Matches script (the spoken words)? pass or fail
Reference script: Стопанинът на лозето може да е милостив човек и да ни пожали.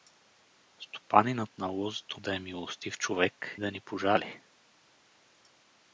fail